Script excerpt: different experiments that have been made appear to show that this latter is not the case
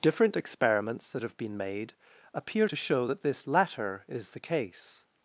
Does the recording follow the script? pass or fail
fail